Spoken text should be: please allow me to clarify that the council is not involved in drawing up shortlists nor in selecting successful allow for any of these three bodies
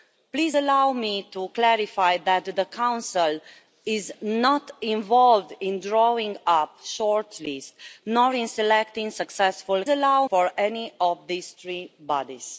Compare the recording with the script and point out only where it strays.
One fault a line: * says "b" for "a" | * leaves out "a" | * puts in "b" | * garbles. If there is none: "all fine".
all fine